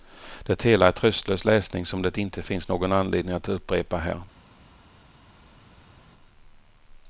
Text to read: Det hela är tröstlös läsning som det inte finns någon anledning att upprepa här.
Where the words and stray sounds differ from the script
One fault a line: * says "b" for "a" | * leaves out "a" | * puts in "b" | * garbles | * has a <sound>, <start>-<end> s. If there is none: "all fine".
all fine